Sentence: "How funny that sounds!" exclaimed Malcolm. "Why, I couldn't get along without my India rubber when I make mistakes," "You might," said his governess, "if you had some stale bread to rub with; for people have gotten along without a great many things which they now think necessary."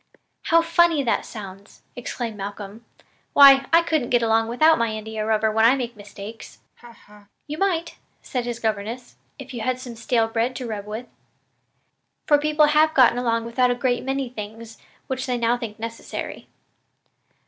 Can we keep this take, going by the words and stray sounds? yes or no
no